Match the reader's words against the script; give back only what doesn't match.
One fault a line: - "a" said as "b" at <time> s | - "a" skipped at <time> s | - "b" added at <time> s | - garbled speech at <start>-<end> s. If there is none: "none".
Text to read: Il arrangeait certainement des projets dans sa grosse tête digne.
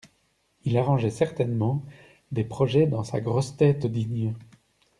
none